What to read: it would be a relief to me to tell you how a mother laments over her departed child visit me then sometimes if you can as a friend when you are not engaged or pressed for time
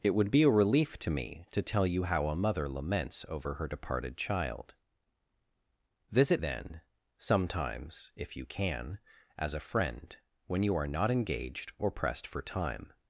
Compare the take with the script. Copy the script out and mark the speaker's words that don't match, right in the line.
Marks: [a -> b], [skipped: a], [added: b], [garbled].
it would be a relief to me to tell you how a mother laments over her departed child visit [skipped: me] then sometimes if you can as a friend when you are not engaged or pressed for time